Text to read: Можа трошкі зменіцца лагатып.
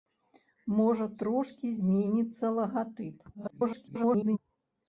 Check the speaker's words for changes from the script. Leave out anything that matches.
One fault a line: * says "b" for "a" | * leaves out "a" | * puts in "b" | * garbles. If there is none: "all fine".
* garbles